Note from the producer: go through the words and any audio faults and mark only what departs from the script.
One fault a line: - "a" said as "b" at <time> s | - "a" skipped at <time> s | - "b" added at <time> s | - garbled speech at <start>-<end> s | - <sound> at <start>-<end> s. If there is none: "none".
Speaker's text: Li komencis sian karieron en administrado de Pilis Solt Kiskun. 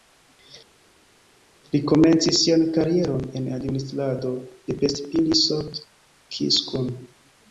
- "Pest" added at 4.8 s